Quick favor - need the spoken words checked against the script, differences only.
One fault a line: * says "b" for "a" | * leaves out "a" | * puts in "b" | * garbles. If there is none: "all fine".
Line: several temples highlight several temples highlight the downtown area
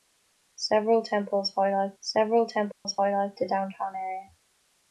all fine